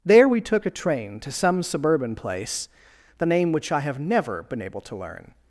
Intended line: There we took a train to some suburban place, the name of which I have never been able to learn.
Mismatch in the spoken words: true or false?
true